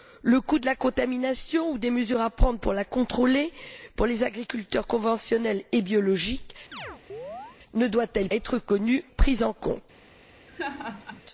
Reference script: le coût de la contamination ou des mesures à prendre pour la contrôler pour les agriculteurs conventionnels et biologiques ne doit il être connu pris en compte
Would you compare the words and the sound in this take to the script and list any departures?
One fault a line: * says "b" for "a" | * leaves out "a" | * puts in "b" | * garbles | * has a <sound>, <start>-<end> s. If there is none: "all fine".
* has a chirp, 6.7-7.6 s
* has a laugh, 10.5-11.2 s